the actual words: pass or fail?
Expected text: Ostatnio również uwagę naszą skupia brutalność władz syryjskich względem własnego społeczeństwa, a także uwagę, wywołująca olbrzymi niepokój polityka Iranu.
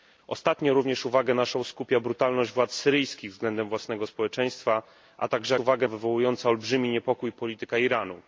pass